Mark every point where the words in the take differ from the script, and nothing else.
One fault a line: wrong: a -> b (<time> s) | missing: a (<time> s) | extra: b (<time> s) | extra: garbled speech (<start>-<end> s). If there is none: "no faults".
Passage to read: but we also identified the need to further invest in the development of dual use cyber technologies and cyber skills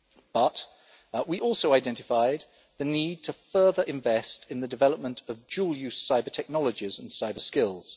no faults